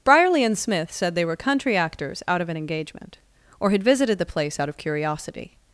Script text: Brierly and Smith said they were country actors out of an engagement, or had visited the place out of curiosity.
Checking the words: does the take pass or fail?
pass